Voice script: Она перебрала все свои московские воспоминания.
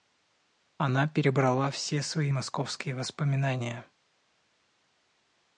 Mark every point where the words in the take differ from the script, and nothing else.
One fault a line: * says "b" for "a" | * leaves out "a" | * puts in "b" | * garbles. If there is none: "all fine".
all fine